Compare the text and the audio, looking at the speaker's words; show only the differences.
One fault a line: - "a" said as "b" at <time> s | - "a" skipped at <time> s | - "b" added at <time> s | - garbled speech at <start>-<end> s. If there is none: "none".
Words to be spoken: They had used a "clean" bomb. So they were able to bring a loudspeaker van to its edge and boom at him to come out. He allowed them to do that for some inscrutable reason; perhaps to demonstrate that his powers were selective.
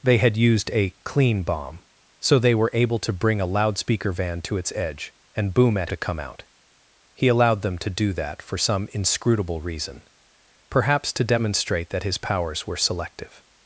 - "him" skipped at 5.9 s